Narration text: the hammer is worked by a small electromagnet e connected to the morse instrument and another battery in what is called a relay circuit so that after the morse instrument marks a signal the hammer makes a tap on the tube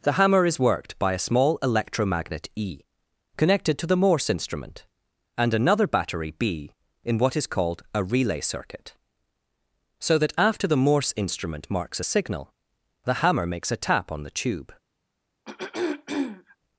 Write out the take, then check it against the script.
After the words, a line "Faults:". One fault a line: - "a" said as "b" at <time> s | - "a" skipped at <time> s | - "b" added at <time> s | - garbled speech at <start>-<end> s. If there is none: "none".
the hammer is worked by a small electromagnet e connected to the morse instrument and another battery b in what is called a relay circuit so that after the morse instrument marks a signal the hammer makes a tap on the tube
Faults:
- "b" added at 6.3 s